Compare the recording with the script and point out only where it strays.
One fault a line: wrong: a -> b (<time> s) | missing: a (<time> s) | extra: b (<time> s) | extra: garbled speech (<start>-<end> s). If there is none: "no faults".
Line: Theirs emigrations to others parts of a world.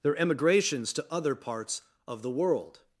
wrong: Theirs -> Their (0.0 s)
wrong: others -> other (1.1 s)
wrong: a -> the (2.2 s)